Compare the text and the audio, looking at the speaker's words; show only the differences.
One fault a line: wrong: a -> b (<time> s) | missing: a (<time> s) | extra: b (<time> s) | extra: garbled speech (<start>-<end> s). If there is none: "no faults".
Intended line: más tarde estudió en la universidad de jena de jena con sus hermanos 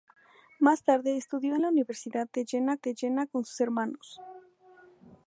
no faults